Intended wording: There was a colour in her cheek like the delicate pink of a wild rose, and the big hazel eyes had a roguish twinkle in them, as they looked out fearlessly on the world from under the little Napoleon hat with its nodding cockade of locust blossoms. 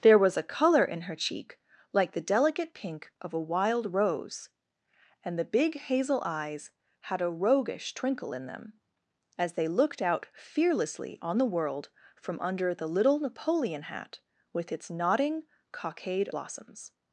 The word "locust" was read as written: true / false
false